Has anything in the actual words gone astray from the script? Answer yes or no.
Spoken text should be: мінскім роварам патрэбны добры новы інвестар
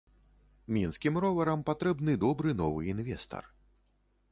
no